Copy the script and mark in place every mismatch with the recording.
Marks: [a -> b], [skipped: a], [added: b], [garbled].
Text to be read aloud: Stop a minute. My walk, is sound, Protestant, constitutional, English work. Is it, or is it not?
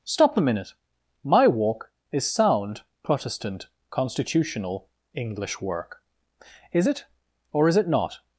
Stop a minute. My walk, is sound, Protestant, constitutional, English work. Is it, or is it not?